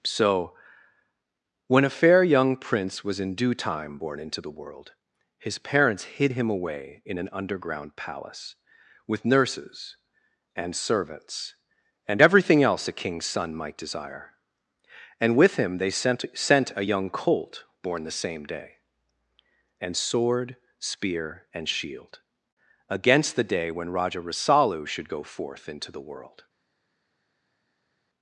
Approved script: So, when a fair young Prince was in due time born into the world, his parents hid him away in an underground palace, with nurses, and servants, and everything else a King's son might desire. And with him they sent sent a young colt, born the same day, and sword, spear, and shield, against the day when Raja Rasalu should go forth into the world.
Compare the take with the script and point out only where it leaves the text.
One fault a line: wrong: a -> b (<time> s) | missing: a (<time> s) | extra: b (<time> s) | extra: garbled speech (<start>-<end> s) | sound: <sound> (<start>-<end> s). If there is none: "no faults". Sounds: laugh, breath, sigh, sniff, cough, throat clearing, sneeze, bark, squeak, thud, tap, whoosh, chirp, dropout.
no faults